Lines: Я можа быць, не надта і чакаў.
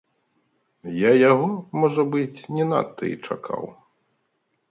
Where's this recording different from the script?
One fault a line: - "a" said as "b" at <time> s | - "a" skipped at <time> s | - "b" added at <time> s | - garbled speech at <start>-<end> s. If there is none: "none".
- "яго" added at 1.3 s